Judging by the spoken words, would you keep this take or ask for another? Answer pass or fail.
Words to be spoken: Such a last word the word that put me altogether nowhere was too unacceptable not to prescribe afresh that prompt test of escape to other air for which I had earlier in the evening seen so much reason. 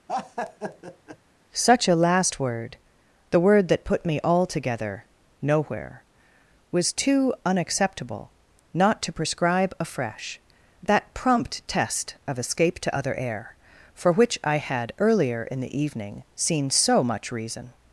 pass